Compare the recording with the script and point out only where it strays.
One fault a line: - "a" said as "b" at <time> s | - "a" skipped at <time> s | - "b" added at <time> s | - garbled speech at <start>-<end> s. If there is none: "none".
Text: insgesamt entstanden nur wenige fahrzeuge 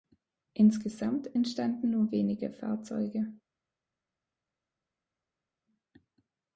none